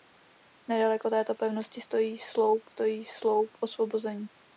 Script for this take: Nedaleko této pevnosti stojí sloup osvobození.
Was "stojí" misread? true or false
false